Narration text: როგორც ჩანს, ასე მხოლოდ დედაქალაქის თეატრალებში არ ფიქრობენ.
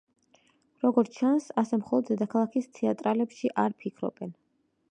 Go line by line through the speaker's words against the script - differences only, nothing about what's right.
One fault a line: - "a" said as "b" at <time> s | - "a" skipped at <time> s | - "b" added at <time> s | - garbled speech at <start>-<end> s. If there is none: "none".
none